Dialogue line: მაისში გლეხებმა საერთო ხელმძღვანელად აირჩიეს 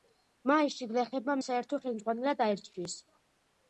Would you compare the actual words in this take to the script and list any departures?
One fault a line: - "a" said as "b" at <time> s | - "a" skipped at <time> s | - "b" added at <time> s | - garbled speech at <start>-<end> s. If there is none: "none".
none